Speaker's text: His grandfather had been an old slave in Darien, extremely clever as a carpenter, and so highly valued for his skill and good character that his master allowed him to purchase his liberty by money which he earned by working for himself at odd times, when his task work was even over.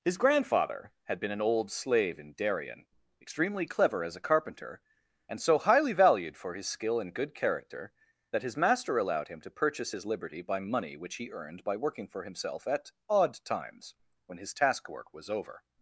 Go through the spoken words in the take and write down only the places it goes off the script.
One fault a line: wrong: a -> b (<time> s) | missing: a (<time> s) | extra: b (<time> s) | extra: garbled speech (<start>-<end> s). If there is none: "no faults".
missing: even (15.3 s)